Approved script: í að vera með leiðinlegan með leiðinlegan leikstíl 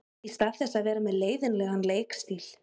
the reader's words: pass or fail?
fail